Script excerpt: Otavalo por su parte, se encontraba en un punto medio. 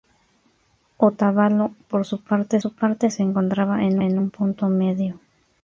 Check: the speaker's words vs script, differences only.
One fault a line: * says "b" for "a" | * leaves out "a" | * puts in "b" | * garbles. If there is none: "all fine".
* puts in "su parte"
* puts in "en"